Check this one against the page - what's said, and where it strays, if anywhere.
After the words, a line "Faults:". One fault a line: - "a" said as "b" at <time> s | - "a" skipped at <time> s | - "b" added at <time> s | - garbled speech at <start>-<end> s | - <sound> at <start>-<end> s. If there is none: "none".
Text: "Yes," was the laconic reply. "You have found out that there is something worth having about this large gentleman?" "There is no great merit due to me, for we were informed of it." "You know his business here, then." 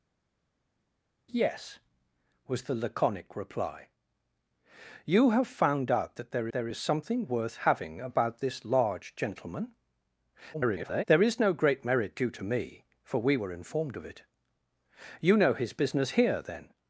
"Yes," was the laconic reply. "You have found out that there there is something worth having about this large gentleman?" [garbled] "There is no great merit due to me, for we were informed of it." "You know his business here, then."
Faults:
- "there" added at 6.5 s
- garbled speech at 10.5-11.0 s